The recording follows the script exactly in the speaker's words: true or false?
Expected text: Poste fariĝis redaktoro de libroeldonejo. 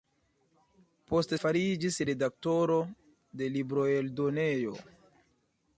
true